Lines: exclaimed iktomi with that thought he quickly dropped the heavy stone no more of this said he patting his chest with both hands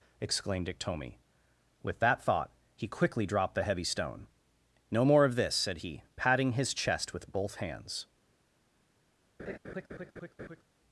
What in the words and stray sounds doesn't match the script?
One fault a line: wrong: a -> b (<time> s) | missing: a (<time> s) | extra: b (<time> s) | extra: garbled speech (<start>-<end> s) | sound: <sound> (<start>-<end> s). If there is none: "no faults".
sound: laugh (9.4-10.6 s)